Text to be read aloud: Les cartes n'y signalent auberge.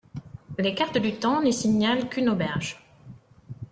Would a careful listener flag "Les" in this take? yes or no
no